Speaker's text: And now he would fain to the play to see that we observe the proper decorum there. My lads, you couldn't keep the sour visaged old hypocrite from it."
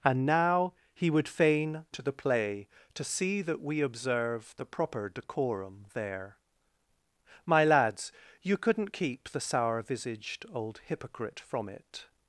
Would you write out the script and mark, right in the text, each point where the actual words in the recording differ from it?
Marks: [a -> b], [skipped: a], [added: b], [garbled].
And now he would fain to the play to see that we observe the proper decorum there. My lads, you couldn't keep the sour visaged old hypocrite from it."